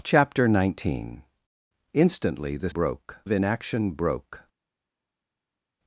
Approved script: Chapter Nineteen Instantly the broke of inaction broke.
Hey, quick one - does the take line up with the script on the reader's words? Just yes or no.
yes